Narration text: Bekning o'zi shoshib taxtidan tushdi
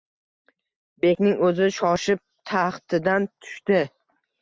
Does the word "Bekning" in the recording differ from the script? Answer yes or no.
no